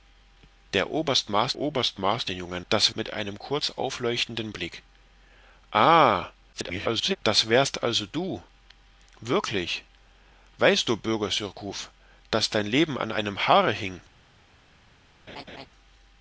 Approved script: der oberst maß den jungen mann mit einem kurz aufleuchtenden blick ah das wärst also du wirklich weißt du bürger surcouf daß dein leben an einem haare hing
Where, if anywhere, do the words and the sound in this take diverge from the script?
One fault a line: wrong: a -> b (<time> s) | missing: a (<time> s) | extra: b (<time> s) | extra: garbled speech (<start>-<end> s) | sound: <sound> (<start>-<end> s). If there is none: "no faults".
extra: oberst maß (1.6 s)
wrong: mann -> das (2.7 s)
extra: garbled speech (6.5-7.2 s)
sound: laugh (15.3-15.7 s)